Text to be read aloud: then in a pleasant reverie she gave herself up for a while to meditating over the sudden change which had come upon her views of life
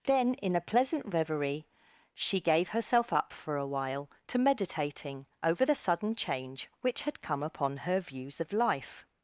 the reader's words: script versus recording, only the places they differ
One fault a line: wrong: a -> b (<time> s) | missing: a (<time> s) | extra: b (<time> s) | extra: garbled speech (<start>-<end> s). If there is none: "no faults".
no faults